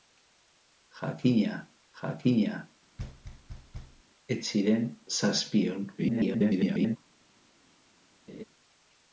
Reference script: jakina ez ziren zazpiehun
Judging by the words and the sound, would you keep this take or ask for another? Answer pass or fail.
fail